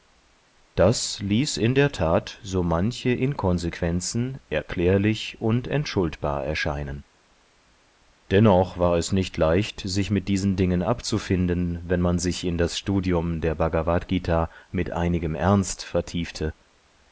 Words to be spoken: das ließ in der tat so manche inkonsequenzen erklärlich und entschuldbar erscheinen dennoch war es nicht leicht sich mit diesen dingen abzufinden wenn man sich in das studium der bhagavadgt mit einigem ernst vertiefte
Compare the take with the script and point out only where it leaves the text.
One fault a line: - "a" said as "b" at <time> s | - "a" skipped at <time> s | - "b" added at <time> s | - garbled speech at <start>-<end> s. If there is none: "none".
none